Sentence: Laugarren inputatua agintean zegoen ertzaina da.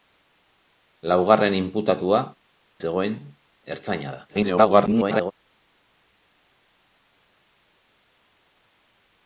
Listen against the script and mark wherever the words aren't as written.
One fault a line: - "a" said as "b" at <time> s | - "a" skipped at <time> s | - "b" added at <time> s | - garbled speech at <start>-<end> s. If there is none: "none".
- "agintean" skipped at 2.2 s
- garbled speech at 4.3-5.3 s